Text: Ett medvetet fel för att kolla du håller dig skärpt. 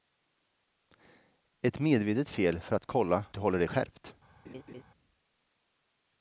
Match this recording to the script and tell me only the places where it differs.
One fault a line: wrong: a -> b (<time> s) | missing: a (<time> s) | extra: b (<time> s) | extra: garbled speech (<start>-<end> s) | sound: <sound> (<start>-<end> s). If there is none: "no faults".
sound: laugh (4.4-4.8 s)